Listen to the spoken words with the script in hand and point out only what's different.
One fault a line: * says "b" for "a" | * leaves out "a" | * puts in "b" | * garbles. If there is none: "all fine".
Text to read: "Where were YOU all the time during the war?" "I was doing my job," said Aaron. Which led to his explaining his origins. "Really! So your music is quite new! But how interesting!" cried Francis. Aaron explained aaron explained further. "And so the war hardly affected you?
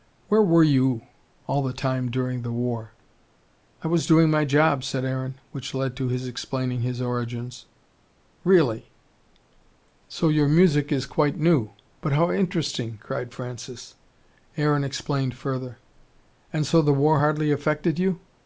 * leaves out "aaron explained"